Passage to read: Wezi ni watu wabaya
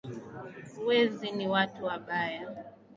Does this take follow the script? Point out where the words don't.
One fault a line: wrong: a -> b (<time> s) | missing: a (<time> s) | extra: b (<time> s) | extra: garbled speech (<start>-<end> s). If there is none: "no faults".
no faults